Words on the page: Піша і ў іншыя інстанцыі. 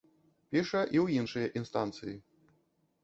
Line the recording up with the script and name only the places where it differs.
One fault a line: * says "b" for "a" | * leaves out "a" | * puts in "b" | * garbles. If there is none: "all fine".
all fine